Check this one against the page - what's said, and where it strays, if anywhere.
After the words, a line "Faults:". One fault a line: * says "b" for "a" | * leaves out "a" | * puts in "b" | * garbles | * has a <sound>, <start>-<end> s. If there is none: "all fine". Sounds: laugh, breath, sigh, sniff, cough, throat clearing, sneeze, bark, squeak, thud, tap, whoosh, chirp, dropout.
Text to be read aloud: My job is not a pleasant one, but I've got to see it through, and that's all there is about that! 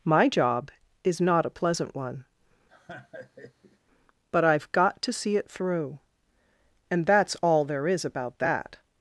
My job is not a pleasant one, but I've got to see it through, and that's all there is about that!
Faults:
* has a laugh, 2.7-3.8 s